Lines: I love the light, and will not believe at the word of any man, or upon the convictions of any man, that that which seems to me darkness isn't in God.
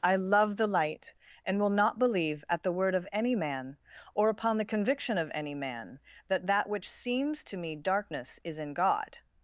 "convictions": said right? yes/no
no